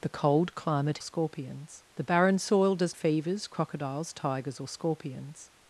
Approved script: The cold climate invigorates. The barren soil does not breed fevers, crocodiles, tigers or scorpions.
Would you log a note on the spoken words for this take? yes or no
yes